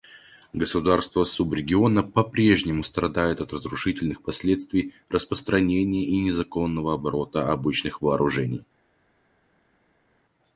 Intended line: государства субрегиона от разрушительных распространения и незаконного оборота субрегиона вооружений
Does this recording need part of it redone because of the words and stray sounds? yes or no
yes